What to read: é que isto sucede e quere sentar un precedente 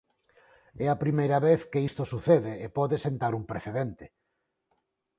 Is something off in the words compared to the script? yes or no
yes